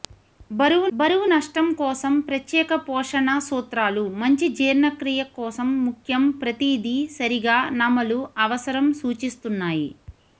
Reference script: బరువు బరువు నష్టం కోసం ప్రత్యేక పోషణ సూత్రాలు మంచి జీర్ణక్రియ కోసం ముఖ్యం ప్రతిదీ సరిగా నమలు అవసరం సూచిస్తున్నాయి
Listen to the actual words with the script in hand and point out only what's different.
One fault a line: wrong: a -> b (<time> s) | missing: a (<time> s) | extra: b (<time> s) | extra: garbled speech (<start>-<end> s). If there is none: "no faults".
no faults